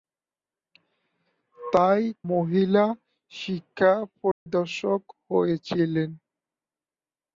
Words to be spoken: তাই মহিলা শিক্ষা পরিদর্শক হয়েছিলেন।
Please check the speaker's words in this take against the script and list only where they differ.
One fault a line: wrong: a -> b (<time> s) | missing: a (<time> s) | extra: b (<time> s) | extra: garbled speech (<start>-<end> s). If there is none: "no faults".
no faults